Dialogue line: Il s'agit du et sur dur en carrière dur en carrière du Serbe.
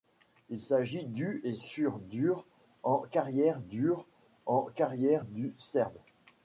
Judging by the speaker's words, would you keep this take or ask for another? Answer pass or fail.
pass